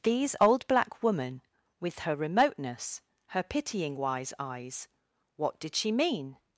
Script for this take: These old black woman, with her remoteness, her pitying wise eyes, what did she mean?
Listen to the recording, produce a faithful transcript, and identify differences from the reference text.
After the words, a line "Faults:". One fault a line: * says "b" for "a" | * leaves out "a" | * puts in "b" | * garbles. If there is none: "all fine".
These old black woman, with her remoteness, her pitying wise eyes, what did she mean?
Faults:
all fine